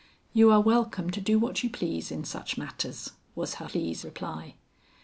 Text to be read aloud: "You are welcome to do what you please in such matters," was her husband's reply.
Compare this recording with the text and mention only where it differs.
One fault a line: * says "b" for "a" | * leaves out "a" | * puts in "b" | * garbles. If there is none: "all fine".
* says "please" for "husband's"